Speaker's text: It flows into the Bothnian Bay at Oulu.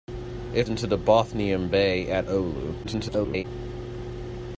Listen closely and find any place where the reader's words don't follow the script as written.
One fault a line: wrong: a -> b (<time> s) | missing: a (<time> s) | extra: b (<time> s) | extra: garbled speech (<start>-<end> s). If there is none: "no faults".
missing: flows (0.7 s)
extra: garbled speech (2.8-3.4 s)